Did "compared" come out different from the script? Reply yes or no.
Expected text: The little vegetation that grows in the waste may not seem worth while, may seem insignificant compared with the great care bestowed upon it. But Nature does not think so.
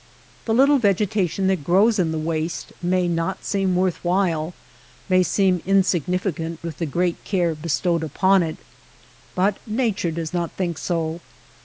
yes